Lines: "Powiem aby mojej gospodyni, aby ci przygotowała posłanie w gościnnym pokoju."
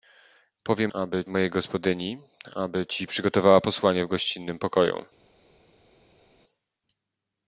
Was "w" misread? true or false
false